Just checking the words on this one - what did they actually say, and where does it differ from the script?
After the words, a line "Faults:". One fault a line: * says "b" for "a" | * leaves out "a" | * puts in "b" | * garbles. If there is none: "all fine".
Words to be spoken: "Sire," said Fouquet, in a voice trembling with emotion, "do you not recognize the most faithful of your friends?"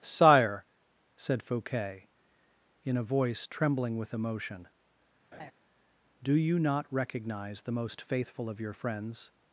"Sire," said Fouquet, in a voice trembling with emotion, "do you not recognize the most faithful of your friends?"
Faults:
all fine